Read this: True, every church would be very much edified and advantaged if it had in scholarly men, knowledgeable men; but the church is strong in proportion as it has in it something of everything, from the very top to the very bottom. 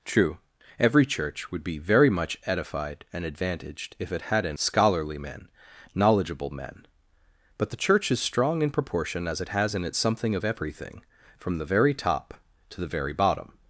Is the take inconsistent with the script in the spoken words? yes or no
no